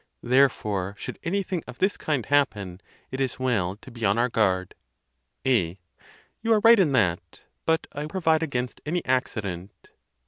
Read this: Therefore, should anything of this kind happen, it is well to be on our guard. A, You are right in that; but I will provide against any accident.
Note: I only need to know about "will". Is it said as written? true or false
false